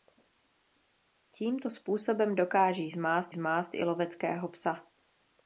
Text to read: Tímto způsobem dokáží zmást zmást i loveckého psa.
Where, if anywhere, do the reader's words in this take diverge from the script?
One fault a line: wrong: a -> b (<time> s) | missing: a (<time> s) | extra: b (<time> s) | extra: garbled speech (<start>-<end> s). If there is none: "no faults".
no faults